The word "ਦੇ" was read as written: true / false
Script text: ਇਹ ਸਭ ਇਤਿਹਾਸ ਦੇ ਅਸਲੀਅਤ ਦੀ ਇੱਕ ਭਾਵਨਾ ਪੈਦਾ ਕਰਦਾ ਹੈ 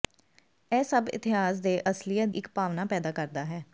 true